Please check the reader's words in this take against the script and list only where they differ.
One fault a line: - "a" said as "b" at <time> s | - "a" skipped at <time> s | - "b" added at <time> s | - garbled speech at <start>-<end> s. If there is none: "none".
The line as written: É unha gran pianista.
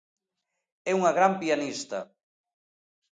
none